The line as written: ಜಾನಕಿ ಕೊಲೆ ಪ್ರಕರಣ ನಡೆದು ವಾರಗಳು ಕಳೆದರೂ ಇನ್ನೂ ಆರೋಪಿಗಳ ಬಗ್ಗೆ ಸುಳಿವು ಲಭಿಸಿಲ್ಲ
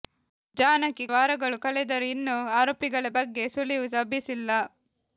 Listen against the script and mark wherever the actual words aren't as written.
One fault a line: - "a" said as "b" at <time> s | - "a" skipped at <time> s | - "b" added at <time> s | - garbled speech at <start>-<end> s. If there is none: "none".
- "ಕೊಲೆ ಪ್ರಕರಣ ನಡೆದು" skipped at 1.1 s